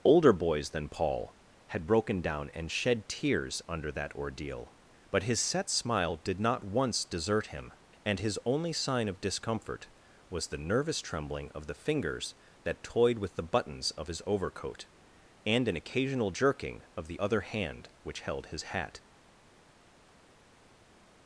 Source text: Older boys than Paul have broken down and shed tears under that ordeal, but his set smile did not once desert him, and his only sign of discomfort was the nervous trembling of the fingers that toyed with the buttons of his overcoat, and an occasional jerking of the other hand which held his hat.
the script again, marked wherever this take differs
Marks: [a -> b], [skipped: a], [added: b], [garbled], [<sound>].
Older boys than Paul [have -> had] broken down and shed tears under that ordeal, but his set smile did not once desert him, and his only sign of discomfort was the nervous trembling of the fingers that toyed with the buttons of his overcoat, and an occasional jerking of the other hand which held his hat.